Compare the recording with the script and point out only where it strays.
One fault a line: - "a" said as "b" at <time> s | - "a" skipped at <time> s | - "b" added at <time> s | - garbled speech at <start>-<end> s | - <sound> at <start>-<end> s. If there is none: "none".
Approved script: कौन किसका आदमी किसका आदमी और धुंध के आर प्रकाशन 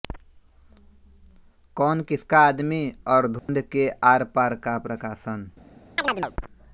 - "किसका आदमी" skipped at 2.8 s
- dropout at 3.4-3.5 s
- "पार का" added at 4.3 s
- chirp at 6.0-6.3 s